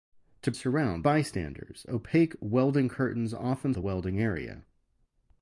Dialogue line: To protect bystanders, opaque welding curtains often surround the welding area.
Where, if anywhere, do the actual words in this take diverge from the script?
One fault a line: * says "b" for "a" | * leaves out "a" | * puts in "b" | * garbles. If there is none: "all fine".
* says "surround" for "protect"
* leaves out "surround"